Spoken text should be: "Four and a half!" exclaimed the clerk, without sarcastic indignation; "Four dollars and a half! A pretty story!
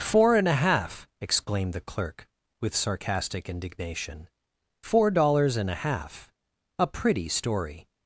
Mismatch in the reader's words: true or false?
true